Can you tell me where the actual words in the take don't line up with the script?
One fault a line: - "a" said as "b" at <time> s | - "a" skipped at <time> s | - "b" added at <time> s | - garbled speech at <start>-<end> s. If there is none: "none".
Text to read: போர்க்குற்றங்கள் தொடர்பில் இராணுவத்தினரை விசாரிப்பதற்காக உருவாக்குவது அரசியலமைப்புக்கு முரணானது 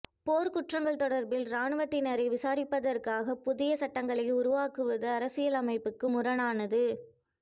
- "புதிய சட்டங்களை" added at 3.4 s